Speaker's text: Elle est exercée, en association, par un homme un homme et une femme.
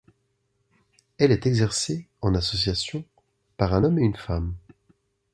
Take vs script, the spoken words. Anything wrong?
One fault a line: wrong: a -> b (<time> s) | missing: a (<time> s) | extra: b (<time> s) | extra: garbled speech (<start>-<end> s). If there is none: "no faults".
missing: un homme (4.0 s)